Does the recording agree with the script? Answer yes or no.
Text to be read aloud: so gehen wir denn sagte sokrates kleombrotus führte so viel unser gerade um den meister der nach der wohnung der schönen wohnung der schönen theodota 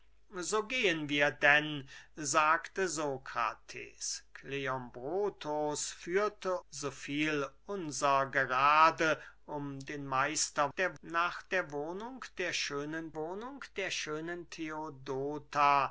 yes